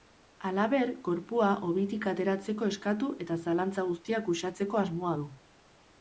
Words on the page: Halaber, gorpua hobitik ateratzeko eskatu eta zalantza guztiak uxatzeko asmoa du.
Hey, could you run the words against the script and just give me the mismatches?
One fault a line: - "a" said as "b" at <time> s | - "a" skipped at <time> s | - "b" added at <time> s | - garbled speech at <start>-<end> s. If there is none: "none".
none